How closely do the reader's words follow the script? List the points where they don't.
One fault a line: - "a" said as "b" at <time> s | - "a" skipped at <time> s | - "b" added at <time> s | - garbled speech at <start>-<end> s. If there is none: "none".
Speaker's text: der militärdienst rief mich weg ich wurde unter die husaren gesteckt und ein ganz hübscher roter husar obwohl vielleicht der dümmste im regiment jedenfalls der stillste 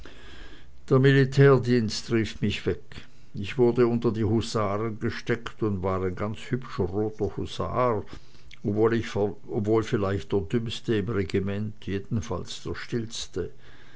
- "war" added at 5.8 s